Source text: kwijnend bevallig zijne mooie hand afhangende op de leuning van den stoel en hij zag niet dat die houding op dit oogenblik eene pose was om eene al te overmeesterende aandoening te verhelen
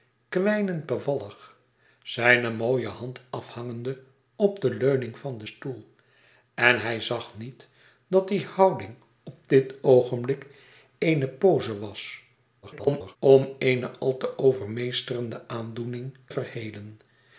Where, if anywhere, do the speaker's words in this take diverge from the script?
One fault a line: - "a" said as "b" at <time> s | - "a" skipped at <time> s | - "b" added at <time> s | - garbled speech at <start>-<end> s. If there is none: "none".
- garbled speech at 12.6-13.2 s
- "te" skipped at 16.2 s